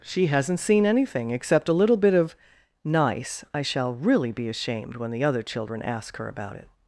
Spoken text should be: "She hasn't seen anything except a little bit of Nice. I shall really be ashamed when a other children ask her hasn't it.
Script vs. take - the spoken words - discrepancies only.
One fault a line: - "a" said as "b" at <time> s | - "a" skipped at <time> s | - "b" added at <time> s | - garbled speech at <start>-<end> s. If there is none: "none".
- "a" said as "the" at 5.1 s
- "hasn't" said as "about" at 6.3 s